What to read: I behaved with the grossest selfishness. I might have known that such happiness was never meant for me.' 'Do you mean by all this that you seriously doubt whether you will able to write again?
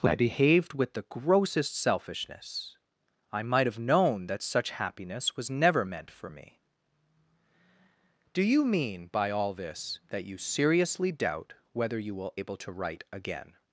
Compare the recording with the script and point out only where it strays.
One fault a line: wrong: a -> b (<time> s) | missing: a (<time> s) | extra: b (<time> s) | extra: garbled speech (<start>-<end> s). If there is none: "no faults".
no faults